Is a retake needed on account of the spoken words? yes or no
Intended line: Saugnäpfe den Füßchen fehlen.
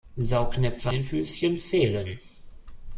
no